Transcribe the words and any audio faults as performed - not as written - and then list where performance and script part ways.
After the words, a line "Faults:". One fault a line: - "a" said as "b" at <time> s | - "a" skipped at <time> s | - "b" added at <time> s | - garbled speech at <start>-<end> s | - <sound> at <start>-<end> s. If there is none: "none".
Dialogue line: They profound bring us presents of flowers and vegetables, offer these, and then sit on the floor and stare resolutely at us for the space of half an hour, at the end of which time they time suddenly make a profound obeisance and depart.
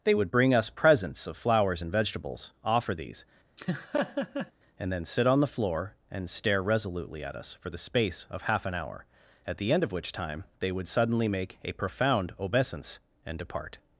They would bring us presents of flowers and vegetables, offer these, and then sit on the floor and stare resolutely at us for the space of half an hour, at the end of which time they would suddenly make a profound obeisance and depart.
Faults:
- "profound" said as "would" at 0.1 s
- laugh at 3.6-4.5 s
- "time" said as "would" at 10.7 s